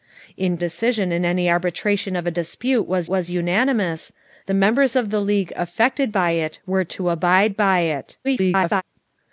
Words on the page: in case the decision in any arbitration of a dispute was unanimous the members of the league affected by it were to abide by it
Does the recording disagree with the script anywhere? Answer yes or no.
yes